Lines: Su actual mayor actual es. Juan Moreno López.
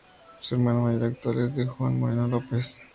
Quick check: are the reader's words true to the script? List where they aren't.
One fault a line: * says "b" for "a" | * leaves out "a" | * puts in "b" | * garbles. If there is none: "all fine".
* says "hermano" for "actual"
* puts in "D"